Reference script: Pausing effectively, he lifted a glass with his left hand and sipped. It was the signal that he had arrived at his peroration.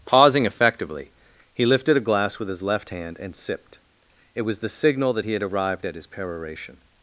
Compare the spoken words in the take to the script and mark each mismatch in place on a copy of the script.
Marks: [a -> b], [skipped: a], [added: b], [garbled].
Pausing effectively, he lifted a glass with his left hand and sipped. It was the signal that he had arrived at his peroration.